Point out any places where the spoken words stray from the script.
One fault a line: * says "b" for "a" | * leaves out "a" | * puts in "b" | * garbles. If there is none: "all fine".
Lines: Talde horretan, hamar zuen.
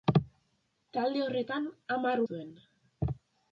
all fine